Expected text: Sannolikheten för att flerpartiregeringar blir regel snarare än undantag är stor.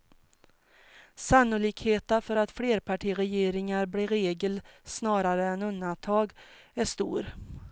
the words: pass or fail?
pass